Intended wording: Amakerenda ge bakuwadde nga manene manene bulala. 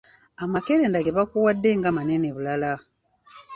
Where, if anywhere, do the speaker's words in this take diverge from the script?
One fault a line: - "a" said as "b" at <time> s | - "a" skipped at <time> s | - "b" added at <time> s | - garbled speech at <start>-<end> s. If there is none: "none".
- "manene" skipped at 2.3 s